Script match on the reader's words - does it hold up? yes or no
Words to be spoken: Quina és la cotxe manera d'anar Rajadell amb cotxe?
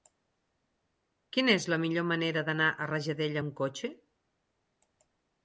no